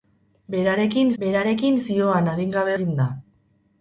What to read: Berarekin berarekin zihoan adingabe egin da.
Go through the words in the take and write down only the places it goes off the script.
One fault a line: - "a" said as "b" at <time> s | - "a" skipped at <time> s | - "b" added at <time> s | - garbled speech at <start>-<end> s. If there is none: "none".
none